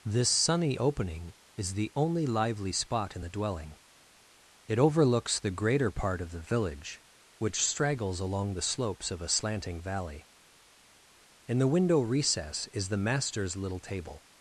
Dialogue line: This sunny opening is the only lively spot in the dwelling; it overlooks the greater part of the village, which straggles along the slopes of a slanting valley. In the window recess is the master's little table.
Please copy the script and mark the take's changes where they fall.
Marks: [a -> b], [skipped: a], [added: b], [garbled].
This sunny opening is the only lively spot in the dwelling; it overlooks the greater part of the village, which straggles along the slopes of a slanting valley. In the window recess is the master's little table.